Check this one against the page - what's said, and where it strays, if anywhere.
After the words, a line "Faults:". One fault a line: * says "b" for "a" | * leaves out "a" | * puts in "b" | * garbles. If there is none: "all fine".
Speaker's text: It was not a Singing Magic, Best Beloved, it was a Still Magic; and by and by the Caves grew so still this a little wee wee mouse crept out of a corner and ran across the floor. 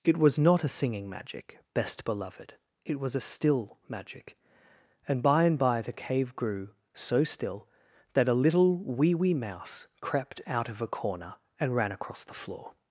It was not a Singing Magic, Best Beloved, it was a Still Magic; and by and by the Cave grew so still that a little wee wee mouse crept out of a corner and ran across the floor.
Faults:
* says "Cave" for "Caves"
* says "that" for "this"